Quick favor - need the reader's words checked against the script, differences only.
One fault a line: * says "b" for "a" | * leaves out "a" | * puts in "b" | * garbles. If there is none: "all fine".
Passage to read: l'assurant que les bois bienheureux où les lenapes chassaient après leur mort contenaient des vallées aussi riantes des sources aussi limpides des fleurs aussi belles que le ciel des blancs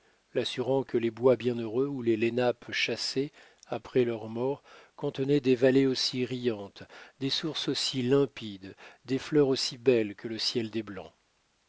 all fine